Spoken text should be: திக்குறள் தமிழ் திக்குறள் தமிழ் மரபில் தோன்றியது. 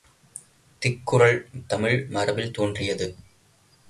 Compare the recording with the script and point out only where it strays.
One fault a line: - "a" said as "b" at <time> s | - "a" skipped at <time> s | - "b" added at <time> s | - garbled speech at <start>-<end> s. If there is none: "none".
- "திக்குறள் தமிழ்" skipped at 2.1 s